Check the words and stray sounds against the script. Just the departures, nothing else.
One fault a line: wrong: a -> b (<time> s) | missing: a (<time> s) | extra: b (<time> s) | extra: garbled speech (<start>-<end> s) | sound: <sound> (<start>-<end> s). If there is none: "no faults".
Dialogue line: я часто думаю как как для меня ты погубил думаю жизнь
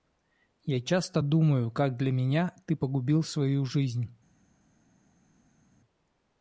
missing: как (2.0 s)
wrong: думаю -> свою (3.2 s)